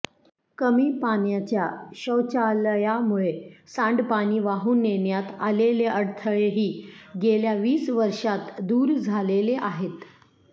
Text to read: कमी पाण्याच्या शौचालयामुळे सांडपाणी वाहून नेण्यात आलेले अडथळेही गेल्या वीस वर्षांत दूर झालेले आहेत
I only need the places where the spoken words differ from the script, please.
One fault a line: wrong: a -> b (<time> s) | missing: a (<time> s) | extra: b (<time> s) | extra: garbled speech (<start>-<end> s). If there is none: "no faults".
no faults